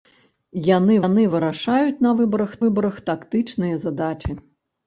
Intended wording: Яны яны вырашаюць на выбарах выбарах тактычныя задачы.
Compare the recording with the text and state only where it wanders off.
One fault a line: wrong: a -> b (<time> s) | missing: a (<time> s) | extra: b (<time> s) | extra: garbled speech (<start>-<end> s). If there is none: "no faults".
no faults